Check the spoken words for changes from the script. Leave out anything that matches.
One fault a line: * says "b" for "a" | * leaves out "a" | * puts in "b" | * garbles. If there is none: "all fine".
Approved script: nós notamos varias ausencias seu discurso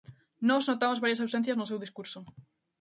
* puts in "no"